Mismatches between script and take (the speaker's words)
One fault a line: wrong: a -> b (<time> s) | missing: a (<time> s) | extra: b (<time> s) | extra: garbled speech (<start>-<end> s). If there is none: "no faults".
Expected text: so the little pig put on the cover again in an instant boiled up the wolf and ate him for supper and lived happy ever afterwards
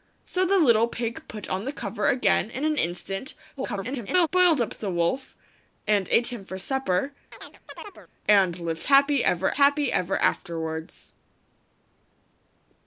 extra: garbled speech (3.6-4.3 s)
extra: happy ever (9.5 s)